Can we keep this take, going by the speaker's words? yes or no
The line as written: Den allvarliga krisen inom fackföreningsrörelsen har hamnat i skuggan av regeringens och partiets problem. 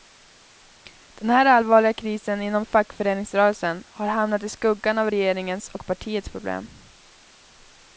no